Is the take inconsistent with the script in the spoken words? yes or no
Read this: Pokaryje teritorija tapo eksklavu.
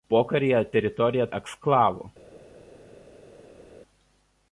yes